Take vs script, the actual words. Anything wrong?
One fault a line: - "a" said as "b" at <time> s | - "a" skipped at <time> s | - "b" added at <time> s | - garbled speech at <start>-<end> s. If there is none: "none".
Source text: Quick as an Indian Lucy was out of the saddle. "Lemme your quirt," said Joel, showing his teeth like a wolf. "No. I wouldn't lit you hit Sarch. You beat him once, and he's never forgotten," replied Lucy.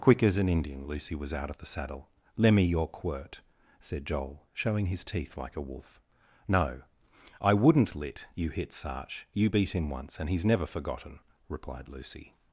none